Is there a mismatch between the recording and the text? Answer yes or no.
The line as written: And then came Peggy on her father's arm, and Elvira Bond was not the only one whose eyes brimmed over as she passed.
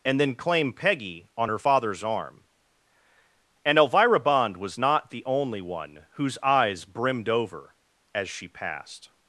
yes